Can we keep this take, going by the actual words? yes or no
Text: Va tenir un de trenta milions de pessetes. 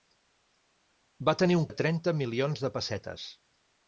yes